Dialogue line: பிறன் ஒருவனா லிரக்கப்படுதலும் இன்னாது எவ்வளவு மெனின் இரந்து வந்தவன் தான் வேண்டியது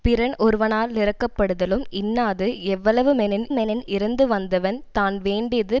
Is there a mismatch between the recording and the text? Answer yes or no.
yes